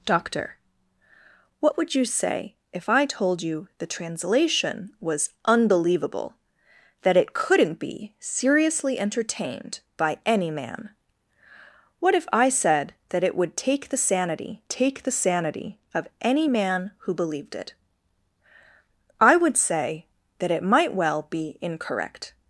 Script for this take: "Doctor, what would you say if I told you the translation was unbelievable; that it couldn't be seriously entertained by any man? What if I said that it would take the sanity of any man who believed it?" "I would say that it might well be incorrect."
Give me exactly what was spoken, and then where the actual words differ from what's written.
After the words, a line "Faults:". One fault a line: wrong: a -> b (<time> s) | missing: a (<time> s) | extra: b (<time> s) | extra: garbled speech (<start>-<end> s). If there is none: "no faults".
"Doctor, what would you say if I told you the translation was unbelievable; that it couldn't be seriously entertained by any man? What if I said that it would take the sanity take the sanity of any man who believed it?" "I would say that it might well be incorrect."
Faults:
extra: take the sanity (14.7 s)